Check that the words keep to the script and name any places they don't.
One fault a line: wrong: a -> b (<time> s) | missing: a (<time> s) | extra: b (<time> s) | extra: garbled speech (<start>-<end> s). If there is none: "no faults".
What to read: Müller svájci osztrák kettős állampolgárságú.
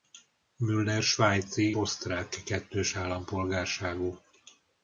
no faults